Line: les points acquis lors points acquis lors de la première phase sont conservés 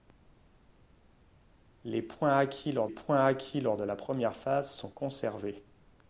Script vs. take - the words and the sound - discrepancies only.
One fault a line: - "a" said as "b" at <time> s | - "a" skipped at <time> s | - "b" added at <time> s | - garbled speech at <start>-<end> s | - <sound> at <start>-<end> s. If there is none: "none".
none